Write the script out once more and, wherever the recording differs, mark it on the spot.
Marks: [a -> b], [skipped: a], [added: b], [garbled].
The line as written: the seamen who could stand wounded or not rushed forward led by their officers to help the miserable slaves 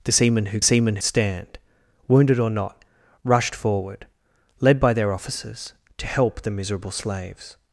the seamen who [could -> seamen] stand wounded or not rushed forward led by their officers to help the miserable slaves